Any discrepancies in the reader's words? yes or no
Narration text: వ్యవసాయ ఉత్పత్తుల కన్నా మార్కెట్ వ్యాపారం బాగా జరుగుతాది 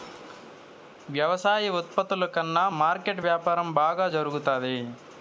no